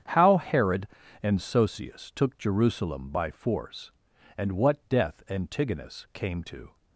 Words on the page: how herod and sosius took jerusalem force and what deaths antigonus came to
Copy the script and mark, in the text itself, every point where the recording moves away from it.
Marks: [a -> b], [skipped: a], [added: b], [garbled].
how herod and sosius took jerusalem [added: by] force and what [deaths -> death] antigonus came to